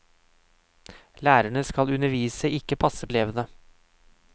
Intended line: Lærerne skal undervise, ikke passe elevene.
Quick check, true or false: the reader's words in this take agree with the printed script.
true